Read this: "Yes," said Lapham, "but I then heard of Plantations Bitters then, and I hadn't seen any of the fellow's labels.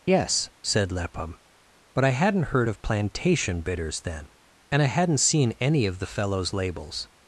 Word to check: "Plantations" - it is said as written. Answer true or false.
false